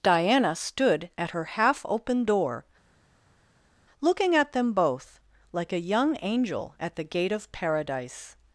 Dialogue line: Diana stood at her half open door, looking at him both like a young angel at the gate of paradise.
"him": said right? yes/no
no